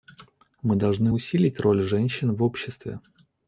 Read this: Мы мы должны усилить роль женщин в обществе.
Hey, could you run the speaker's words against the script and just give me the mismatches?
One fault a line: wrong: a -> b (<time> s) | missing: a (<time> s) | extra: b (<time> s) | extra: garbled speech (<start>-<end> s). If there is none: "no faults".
missing: мы (0.8 s)